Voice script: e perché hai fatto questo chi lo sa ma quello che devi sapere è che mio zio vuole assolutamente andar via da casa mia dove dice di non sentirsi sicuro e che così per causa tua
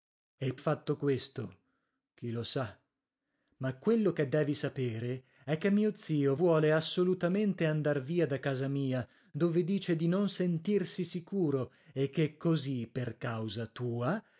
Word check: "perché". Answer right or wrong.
wrong